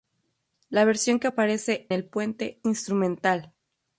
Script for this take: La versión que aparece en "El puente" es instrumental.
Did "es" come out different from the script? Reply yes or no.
yes